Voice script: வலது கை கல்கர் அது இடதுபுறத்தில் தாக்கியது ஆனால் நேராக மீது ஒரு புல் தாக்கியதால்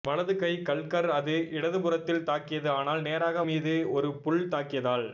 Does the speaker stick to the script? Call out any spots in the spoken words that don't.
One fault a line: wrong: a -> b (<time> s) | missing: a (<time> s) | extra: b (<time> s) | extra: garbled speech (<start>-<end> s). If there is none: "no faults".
no faults